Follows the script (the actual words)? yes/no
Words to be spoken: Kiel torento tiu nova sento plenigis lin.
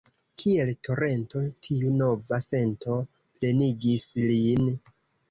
yes